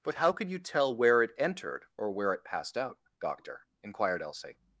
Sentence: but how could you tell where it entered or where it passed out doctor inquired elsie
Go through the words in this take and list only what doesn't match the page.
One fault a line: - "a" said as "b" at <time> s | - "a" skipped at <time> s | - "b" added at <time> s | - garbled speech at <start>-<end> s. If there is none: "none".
none